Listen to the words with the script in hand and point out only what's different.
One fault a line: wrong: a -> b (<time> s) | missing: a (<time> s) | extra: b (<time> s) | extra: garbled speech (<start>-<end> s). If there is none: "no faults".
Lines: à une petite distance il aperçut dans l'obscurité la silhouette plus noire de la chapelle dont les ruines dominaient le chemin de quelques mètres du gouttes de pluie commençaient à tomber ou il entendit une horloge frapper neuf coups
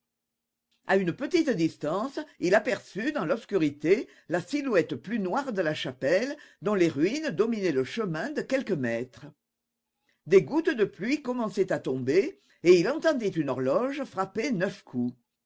wrong: du -> des (10.2 s)
wrong: ou -> et (12.6 s)